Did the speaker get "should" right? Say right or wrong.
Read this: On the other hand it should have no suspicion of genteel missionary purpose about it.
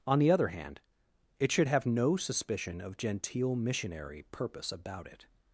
right